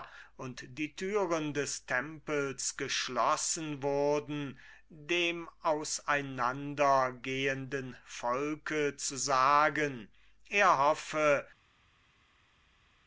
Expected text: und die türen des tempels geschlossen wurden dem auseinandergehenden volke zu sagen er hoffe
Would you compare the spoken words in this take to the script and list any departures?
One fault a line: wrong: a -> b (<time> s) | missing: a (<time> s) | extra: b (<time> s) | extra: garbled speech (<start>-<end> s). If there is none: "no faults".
no faults